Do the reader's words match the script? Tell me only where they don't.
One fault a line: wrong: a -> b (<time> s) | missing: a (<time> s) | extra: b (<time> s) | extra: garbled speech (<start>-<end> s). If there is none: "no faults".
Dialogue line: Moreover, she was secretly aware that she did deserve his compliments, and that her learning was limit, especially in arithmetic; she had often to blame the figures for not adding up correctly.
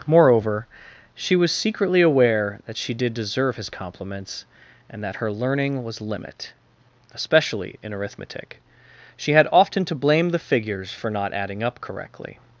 no faults